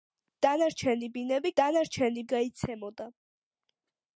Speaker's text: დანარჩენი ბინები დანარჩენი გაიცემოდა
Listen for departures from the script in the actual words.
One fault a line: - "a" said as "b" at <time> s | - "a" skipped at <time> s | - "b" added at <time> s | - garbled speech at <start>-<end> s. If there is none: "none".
none